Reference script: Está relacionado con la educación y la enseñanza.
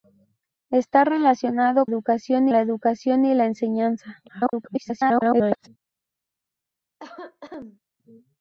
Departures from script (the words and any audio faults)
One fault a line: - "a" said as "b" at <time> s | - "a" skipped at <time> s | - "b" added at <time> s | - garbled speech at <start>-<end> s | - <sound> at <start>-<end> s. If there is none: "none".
- "con" said as "educación" at 1.8 s
- garbled speech at 4.3-5.7 s
- cough at 7.0-7.8 s